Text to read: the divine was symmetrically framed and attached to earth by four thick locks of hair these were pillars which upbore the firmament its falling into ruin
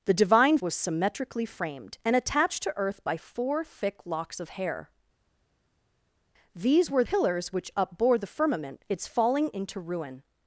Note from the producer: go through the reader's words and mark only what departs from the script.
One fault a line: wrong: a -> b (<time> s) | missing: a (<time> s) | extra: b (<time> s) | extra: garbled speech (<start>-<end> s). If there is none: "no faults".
no faults